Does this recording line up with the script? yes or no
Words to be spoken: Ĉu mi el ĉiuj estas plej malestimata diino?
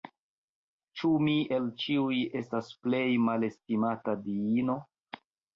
yes